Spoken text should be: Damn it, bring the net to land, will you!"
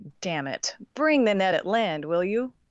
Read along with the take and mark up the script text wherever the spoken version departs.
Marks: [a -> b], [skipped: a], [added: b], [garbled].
Damn it, bring the net [to -> at] land, will you!"